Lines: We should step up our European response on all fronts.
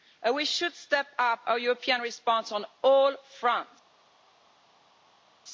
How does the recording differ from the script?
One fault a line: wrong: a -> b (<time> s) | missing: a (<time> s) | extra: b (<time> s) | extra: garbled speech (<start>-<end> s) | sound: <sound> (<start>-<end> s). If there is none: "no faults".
no faults